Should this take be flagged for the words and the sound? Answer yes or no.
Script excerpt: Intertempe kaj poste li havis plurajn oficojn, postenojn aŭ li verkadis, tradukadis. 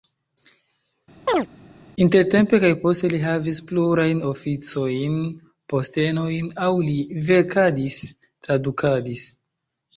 yes